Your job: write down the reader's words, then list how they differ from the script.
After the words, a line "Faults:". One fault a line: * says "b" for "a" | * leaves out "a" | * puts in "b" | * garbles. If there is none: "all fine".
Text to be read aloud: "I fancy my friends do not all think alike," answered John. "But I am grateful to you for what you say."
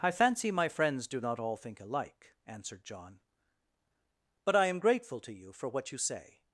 "I fancy my friends do not all think alike," answered John. "But I am grateful to you for what you say."
Faults:
all fine